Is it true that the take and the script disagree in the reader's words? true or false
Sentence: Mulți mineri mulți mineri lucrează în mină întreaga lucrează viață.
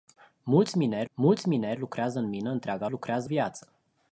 false